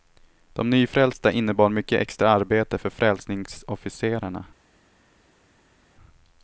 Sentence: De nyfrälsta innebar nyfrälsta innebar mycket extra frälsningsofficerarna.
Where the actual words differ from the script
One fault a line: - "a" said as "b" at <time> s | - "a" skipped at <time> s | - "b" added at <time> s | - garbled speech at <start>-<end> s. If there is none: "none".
- "nyfrälsta innebar mycket extra" said as "mycket extra arbete för" at 1.7 s